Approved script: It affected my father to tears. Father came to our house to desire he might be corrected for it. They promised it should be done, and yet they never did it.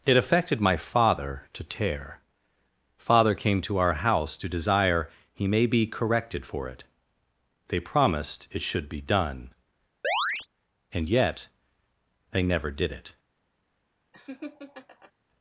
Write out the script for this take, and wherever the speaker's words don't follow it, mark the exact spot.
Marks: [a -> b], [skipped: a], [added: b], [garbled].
It affected my father to [tears. -> tear] Father came to our house to desire he [might -> may] be corrected for it. They promised it should be done, and yet they never did it.